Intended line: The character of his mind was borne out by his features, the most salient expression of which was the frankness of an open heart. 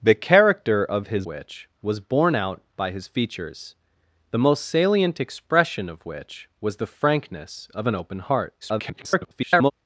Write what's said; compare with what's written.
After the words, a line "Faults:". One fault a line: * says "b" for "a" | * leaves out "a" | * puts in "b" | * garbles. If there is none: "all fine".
The character of his which was borne out by his features, the most salient expression of which was the frankness of an open heart. [garbled]
Faults:
* says "which" for "mind"
* garbles